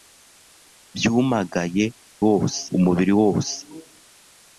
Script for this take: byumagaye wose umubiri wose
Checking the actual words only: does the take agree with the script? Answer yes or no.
yes